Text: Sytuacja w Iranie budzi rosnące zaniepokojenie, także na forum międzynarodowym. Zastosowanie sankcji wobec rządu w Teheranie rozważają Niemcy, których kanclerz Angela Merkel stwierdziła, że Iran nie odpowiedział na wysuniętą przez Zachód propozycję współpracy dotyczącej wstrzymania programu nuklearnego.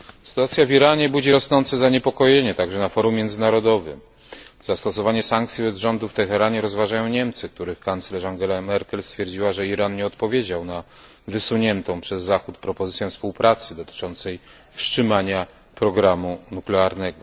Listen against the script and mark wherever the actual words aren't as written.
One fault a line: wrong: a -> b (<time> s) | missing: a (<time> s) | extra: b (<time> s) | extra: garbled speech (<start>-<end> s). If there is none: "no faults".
no faults